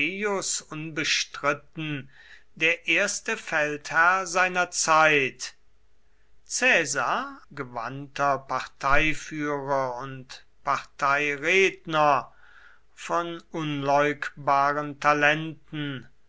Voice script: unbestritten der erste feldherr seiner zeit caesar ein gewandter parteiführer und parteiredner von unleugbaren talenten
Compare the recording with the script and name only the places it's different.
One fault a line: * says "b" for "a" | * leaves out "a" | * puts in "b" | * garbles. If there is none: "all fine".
* leaves out "ein"